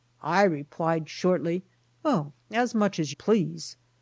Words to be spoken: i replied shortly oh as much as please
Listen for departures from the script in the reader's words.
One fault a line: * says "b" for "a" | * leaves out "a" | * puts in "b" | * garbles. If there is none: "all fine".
all fine